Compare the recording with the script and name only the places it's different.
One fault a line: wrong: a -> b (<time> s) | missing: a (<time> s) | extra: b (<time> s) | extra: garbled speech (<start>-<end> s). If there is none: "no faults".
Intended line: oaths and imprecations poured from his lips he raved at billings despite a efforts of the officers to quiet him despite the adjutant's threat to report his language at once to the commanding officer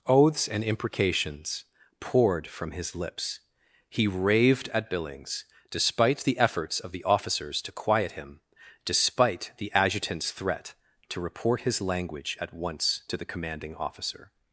wrong: a -> the (6.2 s)